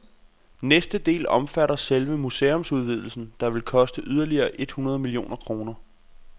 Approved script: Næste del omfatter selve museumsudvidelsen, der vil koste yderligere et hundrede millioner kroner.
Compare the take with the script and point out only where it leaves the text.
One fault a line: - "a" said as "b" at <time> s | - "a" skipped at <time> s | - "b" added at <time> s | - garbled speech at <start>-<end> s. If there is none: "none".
none